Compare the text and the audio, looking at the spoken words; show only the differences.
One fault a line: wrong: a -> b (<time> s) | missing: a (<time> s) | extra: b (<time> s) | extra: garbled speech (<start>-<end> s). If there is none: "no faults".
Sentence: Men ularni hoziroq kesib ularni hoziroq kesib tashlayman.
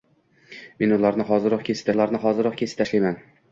no faults